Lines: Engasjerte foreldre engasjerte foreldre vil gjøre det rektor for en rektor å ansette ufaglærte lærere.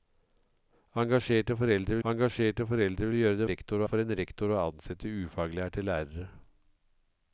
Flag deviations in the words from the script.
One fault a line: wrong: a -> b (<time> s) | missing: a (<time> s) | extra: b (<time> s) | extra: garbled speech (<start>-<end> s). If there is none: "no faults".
no faults